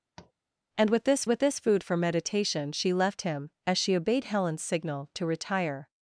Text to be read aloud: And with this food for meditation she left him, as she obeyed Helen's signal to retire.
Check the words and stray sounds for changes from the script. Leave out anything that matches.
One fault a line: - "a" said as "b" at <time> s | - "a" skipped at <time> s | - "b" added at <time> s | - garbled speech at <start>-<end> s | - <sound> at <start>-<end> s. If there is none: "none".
- tap at 0.2-0.3 s
- "with this" added at 1.3 s